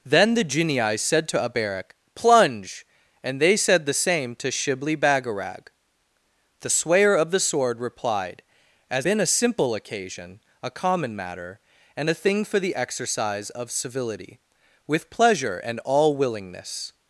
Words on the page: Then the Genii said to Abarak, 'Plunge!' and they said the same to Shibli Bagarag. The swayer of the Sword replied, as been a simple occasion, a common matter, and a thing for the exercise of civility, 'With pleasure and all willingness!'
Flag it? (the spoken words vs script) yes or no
no